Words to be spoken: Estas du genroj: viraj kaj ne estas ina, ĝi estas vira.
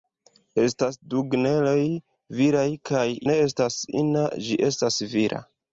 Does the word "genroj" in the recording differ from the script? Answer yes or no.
no